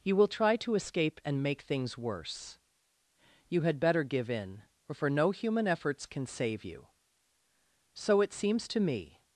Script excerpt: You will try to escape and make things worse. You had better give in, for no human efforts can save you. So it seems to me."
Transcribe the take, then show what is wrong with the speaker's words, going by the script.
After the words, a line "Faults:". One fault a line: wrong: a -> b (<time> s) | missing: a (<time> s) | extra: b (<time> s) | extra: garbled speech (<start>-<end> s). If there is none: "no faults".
You will try to escape and make things worse. You had better give in, for no human efforts can save you. So it seems to me."
Faults:
no faults